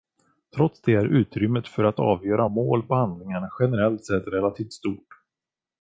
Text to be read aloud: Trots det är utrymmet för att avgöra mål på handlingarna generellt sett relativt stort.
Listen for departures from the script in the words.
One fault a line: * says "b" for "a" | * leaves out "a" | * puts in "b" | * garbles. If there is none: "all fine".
all fine